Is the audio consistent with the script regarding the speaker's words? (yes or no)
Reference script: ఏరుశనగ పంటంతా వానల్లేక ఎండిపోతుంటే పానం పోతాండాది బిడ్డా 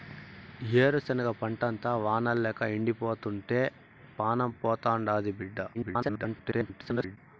no